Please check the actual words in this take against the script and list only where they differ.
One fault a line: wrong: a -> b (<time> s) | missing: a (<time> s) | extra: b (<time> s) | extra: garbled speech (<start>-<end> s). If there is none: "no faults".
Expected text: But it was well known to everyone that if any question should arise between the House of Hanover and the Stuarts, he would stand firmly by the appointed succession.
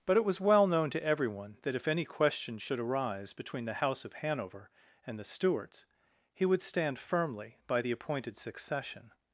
no faults